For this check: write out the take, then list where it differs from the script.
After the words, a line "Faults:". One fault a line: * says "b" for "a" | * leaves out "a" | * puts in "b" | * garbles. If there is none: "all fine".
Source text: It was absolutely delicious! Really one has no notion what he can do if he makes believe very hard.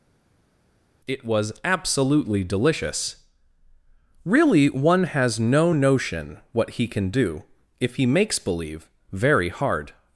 It was absolutely delicious! Really one has no notion what he can do if he makes believe very hard.
Faults:
all fine